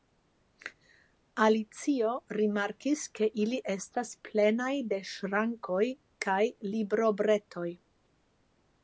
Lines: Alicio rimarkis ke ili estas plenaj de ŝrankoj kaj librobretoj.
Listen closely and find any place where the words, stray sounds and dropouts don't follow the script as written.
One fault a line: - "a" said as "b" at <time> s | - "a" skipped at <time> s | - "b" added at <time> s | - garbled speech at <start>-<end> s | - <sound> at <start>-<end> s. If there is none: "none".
none